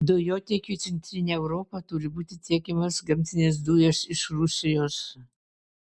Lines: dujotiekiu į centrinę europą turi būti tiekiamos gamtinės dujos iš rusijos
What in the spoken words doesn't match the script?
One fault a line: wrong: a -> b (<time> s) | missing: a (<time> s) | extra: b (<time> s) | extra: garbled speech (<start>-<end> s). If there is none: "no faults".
no faults